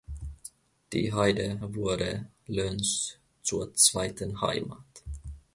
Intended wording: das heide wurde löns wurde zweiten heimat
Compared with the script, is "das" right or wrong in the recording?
wrong